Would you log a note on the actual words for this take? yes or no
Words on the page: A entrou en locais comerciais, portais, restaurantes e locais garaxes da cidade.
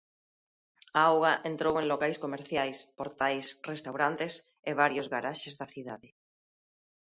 yes